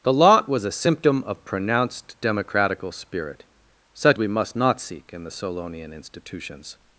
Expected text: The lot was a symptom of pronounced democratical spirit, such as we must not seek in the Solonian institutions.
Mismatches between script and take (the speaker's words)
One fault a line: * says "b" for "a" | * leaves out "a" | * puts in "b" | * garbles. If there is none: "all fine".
* leaves out "as"